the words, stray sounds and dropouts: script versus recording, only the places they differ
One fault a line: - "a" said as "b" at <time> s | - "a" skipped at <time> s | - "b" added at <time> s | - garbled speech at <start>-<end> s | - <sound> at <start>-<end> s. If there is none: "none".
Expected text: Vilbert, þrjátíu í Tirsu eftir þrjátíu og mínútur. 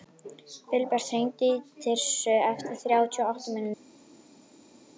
- "þrjátíu" said as "hringdu" at 1.1 s
- "átta" added at 3.3 s